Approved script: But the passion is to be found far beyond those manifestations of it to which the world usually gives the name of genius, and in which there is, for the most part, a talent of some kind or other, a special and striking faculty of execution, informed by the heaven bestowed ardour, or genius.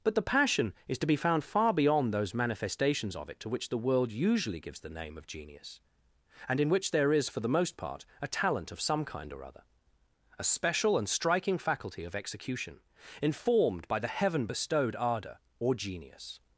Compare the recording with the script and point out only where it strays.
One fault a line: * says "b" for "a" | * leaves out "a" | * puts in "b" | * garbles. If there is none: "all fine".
all fine